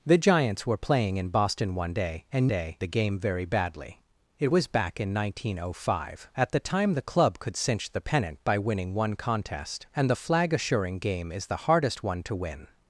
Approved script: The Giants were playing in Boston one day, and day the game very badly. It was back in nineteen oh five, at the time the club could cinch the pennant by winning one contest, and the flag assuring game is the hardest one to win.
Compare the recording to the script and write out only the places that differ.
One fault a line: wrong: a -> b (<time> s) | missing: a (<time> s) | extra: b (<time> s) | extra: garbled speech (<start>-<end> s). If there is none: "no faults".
no faults